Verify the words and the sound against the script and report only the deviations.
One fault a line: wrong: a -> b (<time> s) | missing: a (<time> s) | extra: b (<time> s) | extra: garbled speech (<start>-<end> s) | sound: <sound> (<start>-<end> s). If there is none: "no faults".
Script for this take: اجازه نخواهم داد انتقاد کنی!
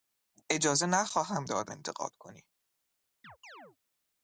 sound: chirp (3.2-3.8 s)